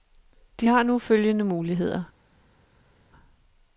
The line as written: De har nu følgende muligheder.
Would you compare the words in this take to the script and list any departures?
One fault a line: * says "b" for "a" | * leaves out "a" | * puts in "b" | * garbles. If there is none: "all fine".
all fine